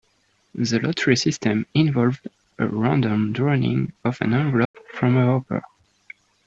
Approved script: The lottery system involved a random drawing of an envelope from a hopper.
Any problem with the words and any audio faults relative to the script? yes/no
yes